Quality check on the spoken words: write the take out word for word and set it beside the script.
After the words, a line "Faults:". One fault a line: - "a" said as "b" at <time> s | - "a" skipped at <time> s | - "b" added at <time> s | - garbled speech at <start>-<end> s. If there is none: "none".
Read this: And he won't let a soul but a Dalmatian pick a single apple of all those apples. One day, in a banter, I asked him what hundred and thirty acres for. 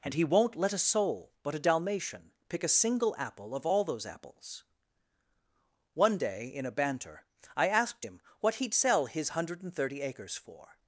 And he won't let a soul but a Dalmatian pick a single apple of all those apples. One day, in a banter, I asked him what he'd sell his hundred and thirty acres for.
Faults:
- "he'd sell his" added at 8.6 s